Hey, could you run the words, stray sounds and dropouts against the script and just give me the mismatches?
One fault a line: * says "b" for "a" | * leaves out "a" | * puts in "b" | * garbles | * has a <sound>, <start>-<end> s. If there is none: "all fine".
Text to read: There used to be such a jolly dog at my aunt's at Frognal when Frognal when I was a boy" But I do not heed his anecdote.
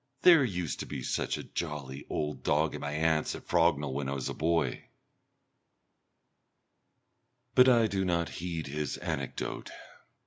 * puts in "old"
* leaves out "Frognal when"